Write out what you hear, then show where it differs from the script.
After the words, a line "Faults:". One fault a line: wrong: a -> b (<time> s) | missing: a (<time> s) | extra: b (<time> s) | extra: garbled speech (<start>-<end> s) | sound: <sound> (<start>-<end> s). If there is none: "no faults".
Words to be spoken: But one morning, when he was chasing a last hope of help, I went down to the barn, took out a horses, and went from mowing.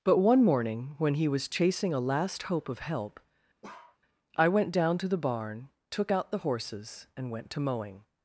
But one morning, when he was chasing a last hope of help, I went down to the barn, took out the horses, and went to mowing.
Faults:
sound: bark (3.6-4.0 s)
wrong: a -> the (6.3 s)
wrong: from -> to (7.5 s)